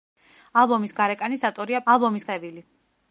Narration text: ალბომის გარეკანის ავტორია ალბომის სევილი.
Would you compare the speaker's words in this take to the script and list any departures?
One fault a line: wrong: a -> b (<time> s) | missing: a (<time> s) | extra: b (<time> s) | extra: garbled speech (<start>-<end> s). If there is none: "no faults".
no faults